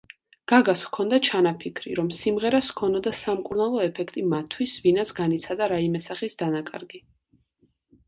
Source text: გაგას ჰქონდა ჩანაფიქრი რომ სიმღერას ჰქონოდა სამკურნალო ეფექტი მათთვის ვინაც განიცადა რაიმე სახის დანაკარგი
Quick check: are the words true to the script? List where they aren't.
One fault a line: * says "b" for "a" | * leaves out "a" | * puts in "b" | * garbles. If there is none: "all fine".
all fine